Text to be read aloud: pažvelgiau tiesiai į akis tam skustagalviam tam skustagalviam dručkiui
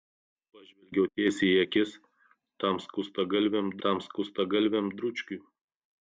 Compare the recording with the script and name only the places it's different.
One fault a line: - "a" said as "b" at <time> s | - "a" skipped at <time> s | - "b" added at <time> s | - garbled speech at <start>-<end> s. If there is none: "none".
none